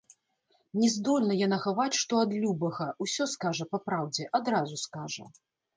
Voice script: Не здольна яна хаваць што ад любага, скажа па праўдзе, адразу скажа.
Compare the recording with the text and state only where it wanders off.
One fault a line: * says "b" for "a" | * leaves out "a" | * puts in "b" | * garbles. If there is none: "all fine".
* puts in "усё"